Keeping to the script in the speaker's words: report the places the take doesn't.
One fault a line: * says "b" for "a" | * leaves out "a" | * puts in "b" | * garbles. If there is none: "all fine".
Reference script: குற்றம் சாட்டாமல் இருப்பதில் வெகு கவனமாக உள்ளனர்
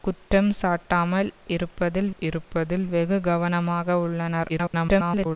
* puts in "இருப்பதில்"
* garbles